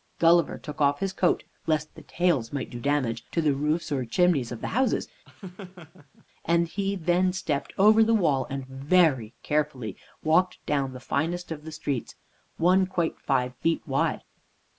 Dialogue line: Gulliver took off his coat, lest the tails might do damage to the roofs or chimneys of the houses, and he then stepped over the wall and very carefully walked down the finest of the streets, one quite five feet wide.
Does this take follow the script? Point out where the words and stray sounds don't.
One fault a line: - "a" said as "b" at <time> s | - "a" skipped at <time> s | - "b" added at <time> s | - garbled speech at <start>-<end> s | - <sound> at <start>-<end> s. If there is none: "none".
- laugh at 5.2-6.3 s